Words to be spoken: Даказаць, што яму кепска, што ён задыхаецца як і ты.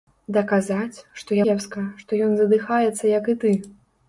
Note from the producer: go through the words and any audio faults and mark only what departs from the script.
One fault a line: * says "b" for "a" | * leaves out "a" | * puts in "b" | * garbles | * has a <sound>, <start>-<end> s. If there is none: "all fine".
* leaves out "яму"